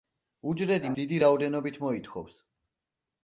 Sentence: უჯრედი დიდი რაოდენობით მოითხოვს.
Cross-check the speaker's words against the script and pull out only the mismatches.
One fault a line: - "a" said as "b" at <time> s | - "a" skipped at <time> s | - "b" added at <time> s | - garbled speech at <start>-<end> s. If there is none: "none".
none